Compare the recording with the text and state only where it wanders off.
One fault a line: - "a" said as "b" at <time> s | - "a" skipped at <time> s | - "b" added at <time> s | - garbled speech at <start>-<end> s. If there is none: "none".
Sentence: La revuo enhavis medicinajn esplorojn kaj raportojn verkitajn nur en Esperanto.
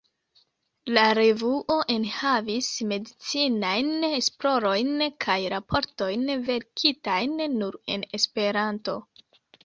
none